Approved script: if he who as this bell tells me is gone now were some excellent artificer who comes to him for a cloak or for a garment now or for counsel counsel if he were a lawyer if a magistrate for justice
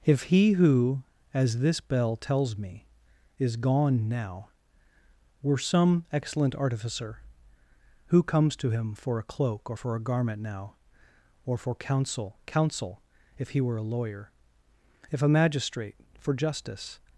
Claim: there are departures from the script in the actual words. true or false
false